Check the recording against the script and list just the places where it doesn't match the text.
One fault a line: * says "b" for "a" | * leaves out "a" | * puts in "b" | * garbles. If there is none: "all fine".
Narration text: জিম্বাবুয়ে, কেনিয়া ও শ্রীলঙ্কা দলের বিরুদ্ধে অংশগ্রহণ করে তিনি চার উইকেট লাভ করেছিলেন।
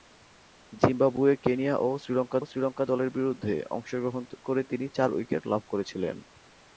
* puts in "শ্রীলঙ্কা"